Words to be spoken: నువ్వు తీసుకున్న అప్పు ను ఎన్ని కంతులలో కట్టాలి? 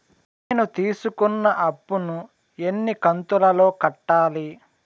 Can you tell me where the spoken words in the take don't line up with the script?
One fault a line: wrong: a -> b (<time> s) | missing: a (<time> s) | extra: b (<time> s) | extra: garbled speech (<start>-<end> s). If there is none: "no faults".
wrong: నువ్వు -> నేను (0.5 s)